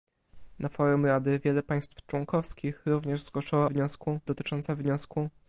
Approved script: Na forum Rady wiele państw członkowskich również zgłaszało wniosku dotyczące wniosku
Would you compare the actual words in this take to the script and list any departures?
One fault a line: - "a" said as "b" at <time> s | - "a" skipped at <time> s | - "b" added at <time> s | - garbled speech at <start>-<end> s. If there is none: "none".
none